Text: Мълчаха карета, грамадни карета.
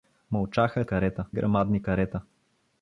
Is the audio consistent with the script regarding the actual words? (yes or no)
yes